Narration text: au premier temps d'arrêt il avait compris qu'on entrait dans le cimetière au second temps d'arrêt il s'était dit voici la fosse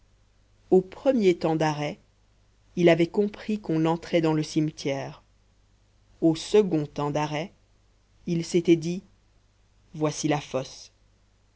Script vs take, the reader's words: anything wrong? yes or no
no